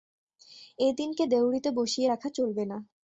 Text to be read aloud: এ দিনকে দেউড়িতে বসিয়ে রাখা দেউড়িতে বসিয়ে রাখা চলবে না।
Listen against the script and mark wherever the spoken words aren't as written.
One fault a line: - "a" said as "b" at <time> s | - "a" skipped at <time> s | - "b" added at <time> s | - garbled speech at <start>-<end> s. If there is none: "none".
- "দেউড়িতে বসিয়ে রাখা" skipped at 2.3 s